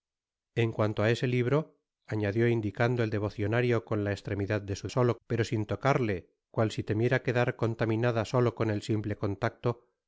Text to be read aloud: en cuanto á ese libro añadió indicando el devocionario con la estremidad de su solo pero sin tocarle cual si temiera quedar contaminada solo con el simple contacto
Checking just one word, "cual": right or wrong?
right